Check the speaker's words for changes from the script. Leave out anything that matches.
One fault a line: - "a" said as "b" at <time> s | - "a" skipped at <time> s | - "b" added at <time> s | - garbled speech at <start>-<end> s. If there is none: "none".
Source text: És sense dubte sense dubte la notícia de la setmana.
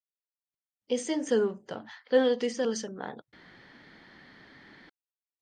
- "sense dubte" skipped at 1.8 s